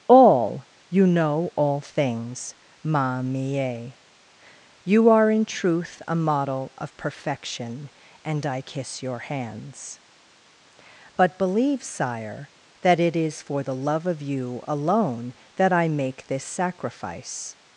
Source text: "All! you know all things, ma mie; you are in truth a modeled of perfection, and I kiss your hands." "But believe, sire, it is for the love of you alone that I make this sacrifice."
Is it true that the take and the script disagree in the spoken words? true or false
true